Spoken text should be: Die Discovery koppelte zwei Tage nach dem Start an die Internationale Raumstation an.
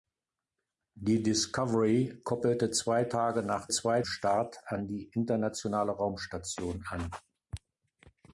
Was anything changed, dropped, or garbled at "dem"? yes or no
yes